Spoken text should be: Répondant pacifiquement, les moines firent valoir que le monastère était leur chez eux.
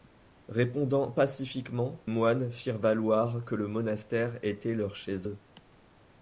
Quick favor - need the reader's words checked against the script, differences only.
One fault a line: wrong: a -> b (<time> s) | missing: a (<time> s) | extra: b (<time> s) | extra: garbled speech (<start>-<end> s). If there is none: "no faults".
missing: les (2.1 s)